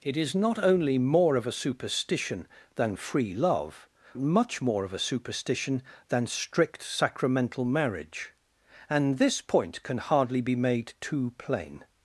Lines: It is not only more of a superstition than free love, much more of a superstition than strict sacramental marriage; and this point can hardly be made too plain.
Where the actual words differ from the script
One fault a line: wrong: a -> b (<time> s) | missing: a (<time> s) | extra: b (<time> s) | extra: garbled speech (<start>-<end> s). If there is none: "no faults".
no faults